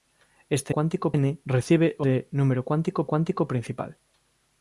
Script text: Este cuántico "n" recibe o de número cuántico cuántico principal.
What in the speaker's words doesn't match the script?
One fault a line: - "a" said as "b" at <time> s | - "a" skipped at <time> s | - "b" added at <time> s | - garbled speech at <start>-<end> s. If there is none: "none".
none